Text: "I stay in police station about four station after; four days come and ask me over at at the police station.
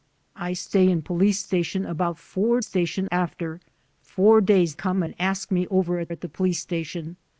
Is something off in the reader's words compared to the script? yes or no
no